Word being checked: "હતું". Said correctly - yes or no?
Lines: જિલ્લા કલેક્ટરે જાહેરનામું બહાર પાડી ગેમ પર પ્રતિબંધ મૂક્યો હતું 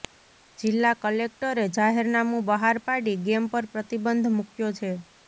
no